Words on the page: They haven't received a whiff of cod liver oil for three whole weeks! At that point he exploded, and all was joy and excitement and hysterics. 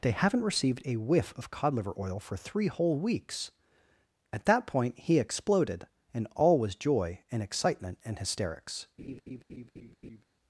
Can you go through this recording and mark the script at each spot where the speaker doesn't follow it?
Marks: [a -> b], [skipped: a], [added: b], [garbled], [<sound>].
They haven't received a whiff of cod liver oil for three whole weeks! At that point he exploded, and all was joy and excitement and hysterics. [laugh]